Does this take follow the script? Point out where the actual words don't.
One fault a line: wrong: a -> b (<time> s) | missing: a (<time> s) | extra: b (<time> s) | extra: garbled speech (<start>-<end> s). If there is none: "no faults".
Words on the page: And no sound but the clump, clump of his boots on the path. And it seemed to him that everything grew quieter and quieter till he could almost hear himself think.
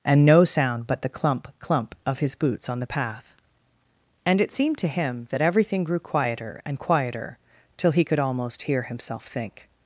no faults